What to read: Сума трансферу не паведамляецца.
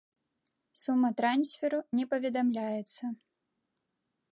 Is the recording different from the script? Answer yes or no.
no